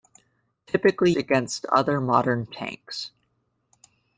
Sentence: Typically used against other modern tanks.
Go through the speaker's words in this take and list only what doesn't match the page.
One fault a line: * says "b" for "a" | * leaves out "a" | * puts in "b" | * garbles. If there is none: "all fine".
* leaves out "used"